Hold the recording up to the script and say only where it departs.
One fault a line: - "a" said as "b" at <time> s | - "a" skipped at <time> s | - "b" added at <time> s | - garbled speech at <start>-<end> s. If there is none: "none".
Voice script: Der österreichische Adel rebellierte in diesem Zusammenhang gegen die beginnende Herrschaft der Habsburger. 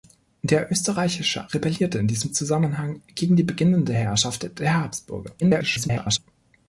- "Adel" skipped at 1.5 s
- garbled speech at 5.4-6.2 s